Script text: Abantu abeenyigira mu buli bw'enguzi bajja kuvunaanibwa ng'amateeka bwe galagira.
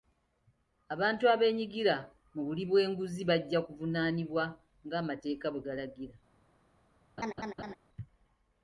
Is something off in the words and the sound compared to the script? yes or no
yes